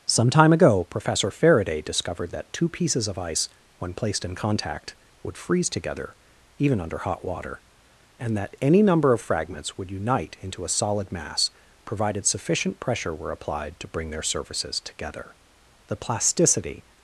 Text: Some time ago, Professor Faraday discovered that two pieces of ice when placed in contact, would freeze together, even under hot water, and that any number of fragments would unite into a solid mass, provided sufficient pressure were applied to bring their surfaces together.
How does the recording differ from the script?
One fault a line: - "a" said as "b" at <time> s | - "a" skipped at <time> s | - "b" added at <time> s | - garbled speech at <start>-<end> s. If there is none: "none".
- "The plasticity" added at 15.9 s